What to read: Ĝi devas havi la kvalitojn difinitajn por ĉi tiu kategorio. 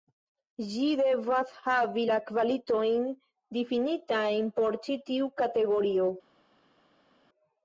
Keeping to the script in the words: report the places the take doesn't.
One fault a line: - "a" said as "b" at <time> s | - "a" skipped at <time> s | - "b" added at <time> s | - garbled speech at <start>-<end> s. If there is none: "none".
none